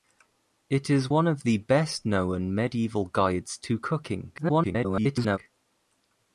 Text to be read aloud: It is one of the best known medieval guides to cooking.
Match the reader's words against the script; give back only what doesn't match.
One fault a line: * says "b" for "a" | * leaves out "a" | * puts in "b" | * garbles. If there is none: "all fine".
* garbles